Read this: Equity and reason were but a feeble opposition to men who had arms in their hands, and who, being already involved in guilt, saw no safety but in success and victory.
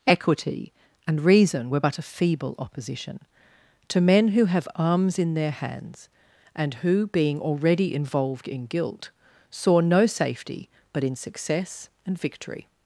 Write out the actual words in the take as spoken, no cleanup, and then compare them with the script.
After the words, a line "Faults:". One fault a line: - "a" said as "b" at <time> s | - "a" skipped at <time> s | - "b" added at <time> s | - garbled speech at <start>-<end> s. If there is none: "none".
Equity and reason were but a feeble opposition to men who have arms in their hands, and who, being already involved in guilt, saw no safety but in success and victory.
Faults:
- "had" said as "have" at 4.4 s